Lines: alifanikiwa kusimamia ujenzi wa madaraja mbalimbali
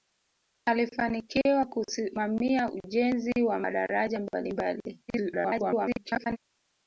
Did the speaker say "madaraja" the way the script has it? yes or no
yes